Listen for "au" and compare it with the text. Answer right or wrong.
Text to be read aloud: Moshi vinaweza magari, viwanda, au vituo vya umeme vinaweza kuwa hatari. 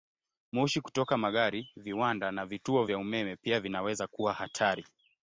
wrong